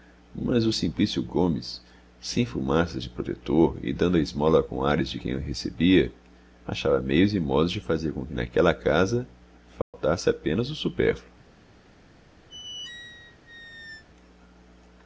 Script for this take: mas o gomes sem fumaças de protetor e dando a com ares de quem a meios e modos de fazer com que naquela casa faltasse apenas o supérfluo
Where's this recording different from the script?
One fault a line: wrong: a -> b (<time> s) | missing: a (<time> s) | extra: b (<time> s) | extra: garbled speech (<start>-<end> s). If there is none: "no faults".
extra: simplício (0.7 s)
extra: esmola (4.2 s)
extra: recebia achava (5.4 s)